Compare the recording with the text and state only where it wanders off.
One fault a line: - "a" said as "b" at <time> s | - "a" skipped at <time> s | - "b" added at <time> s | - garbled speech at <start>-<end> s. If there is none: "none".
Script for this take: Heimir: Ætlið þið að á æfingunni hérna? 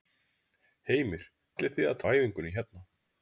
none